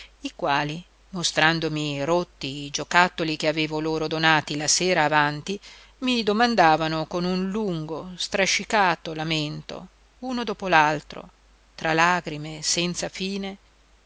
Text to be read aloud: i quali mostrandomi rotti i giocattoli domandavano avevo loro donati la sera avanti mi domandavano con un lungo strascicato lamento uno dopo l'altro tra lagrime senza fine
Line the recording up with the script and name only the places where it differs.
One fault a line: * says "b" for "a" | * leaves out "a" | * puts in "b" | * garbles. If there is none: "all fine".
* says "che" for "domandavano"